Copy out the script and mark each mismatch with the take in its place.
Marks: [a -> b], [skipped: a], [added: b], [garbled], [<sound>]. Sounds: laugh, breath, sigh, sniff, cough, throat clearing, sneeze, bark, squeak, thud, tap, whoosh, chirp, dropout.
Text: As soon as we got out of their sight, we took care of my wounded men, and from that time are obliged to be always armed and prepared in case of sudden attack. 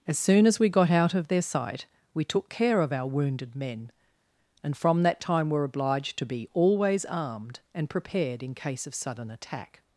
As soon as we got out of their sight, we took care of [my -> our] wounded men, and from that time [are -> were] obliged to be always armed and prepared in case of sudden attack.